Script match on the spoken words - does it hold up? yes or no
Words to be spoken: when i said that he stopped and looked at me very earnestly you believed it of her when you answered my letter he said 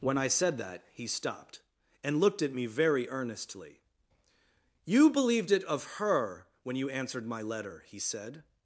yes